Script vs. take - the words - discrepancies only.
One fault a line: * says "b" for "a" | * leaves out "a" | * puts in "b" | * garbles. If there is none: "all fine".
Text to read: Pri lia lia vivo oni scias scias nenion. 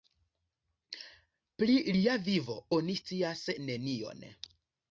* leaves out "lia"
* leaves out "scias"